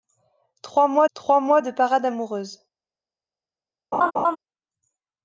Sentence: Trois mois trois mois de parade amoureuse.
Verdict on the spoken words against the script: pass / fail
pass